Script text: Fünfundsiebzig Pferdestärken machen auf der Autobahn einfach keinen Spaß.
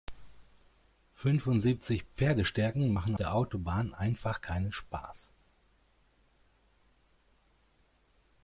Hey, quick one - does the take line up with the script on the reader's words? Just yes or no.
no